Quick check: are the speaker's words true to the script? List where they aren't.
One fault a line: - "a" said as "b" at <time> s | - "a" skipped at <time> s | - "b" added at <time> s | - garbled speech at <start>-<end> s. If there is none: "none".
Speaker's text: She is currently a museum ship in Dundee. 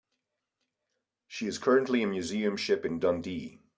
none